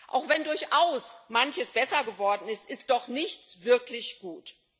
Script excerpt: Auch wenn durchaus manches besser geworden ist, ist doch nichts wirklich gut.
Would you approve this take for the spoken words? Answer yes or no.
yes